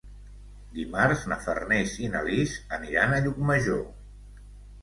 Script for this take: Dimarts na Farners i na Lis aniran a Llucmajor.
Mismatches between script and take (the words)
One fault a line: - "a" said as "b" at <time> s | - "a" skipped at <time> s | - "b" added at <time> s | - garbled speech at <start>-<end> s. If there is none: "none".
none